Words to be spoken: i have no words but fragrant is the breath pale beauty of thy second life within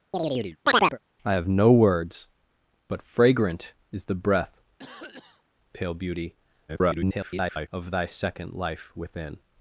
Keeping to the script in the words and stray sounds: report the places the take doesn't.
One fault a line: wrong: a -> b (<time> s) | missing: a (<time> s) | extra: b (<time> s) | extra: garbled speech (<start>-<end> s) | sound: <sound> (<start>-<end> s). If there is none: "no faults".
sound: chirp (0.1-1.0 s)
sound: cough (4.8-5.4 s)
extra: garbled speech (6.7-7.7 s)